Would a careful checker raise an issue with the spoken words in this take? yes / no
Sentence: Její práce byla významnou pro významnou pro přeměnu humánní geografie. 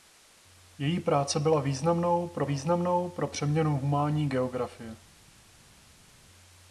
no